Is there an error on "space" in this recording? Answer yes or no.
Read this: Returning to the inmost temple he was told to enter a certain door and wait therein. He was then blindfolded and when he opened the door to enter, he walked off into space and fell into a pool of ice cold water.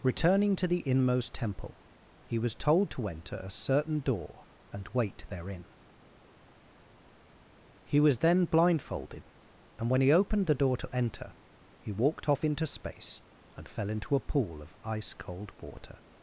no